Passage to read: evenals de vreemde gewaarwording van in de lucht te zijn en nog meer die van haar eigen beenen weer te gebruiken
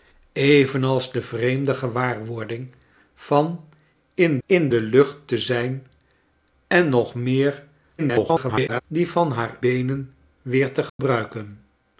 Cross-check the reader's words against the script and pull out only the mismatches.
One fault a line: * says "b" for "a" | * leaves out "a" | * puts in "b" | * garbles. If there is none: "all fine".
* puts in "in"
* garbles
* leaves out "eigen"